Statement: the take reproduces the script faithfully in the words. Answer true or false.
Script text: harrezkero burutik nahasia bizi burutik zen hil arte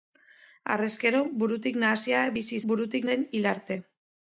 true